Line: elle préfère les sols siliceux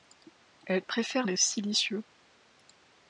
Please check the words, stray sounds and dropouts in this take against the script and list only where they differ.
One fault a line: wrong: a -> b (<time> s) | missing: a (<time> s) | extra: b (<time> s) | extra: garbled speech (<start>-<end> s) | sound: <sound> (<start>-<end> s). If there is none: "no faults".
missing: sols (1.4 s)